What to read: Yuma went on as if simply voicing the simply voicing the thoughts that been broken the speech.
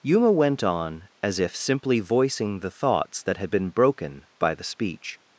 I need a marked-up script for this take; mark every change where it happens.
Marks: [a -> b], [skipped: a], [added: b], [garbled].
Yuma went on as if simply voicing the [skipped: simply voicing the] thoughts that [added: had] been broken [added: by] the speech.